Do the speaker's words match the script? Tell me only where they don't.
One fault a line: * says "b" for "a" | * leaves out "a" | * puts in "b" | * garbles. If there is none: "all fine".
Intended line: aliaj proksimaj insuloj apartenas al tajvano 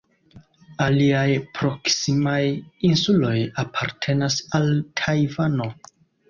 all fine